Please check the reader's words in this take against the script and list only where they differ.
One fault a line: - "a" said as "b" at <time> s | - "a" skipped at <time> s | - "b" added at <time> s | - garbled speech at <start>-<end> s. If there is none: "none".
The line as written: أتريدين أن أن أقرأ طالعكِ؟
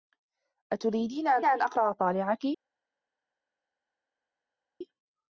none